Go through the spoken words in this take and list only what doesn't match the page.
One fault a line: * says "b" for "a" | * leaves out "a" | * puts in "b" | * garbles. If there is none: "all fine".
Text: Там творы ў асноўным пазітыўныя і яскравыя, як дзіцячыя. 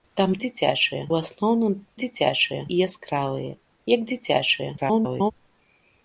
* says "дзіцячыя" for "творы"
* says "дзіцячыя" for "пазітыўныя"
* garbles